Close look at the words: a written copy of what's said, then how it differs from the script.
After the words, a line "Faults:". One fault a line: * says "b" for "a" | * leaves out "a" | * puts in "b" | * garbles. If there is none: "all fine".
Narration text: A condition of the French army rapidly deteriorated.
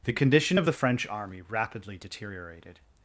The condition of the French army rapidly deteriorated.
Faults:
* says "The" for "A"